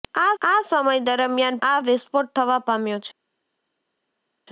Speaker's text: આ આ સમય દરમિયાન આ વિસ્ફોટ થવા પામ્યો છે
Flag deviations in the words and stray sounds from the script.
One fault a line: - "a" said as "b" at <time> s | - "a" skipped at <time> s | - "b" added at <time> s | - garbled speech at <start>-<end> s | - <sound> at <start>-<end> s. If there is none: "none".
none